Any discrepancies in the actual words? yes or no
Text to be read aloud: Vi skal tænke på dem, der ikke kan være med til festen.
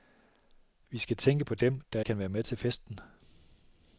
yes